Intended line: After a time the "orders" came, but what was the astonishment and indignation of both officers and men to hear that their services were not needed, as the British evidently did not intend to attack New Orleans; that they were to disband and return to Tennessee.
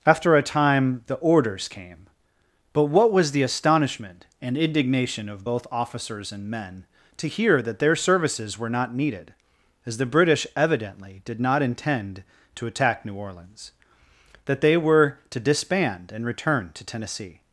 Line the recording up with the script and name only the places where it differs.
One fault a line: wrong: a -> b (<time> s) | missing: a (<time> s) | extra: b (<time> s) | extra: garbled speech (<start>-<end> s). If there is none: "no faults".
no faults